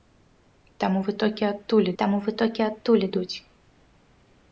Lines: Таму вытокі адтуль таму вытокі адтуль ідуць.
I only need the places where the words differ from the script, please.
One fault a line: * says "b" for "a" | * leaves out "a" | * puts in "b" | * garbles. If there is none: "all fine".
all fine